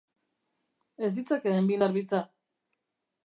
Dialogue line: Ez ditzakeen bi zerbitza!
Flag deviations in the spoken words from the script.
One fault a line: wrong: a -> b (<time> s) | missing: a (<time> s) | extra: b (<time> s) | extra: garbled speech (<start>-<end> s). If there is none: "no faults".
no faults